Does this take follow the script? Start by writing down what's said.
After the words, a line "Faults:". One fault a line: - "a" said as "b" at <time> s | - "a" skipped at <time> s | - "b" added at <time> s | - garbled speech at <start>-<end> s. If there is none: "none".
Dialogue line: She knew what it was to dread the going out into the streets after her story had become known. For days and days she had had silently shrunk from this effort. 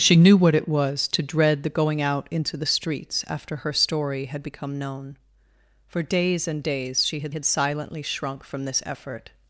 She knew what it was to dread the going out into the streets after her story had become known. For days and days she had had silently shrunk from this effort.
Faults:
none